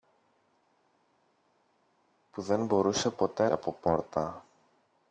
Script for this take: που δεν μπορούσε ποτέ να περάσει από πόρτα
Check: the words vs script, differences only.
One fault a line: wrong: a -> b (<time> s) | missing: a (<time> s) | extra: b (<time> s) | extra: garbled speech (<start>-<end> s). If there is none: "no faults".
missing: να περάσει (3.5 s)